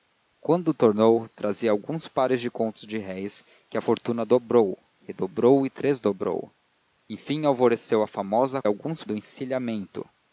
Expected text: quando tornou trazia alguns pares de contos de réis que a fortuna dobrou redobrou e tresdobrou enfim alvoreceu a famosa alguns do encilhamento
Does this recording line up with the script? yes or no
yes